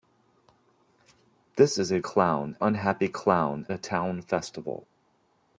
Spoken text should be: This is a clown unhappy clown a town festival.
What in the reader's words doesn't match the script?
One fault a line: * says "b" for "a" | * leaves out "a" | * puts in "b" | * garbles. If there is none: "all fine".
all fine